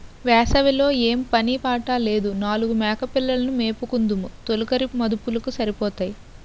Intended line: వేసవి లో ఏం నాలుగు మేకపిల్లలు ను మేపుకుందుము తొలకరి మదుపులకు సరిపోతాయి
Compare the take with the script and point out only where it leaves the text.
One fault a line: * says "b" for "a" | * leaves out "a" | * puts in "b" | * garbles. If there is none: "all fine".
* puts in "పని పాట లేదు"